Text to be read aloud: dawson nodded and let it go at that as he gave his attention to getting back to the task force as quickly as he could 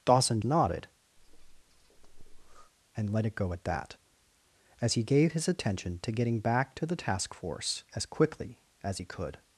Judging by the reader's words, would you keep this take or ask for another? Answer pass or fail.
pass